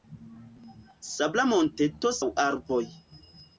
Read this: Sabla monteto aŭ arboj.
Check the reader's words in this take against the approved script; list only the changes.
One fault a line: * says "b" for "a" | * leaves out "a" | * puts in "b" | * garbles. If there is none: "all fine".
all fine